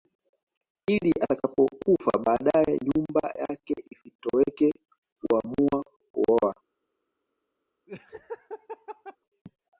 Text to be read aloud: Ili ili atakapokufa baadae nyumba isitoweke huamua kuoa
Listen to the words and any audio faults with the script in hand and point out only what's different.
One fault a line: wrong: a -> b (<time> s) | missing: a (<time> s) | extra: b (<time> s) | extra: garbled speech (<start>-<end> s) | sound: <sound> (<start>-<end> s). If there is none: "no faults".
missing: ili (1.1 s)
extra: yake (3.4 s)
sound: laugh (7.9-9.2 s)